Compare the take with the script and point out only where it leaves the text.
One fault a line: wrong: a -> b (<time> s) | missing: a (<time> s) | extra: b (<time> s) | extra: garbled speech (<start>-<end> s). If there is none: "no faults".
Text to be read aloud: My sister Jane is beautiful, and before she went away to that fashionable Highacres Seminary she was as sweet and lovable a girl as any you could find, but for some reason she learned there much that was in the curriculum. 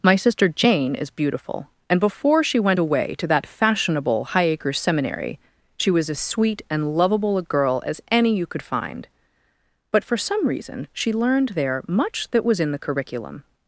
no faults